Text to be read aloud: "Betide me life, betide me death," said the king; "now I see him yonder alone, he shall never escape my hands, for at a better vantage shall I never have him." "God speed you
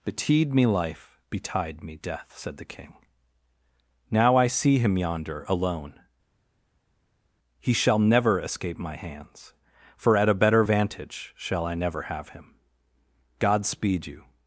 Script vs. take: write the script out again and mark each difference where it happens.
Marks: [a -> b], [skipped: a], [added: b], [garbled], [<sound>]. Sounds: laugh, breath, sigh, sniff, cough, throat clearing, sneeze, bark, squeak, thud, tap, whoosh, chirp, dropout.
"Betide me life, betide me death," said the king; "now I see him yonder alone, he shall never escape my hands, for at a better vantage shall I never have him." "God speed you